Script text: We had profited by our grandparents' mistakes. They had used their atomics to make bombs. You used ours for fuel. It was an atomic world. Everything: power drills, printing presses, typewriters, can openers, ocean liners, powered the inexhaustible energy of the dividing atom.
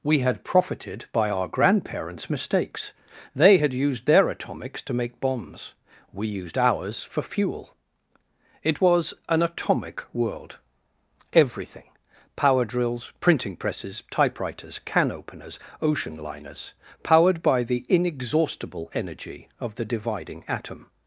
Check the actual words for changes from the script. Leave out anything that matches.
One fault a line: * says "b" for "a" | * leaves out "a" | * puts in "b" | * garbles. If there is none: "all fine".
* says "We" for "You"
* puts in "by"